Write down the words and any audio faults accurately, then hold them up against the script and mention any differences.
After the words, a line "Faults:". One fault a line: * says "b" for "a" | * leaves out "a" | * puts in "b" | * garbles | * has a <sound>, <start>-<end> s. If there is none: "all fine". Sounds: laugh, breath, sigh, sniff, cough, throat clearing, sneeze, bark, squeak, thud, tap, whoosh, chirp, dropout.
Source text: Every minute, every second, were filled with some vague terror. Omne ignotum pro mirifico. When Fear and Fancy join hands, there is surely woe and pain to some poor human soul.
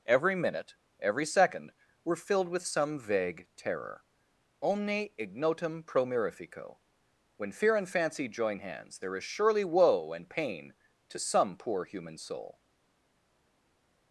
Every minute, every second, were filled with some vague terror. Omne ignotum pro mirifico. When Fear and Fancy join hands, there is surely woe and pain to some poor human soul.
Faults:
all fine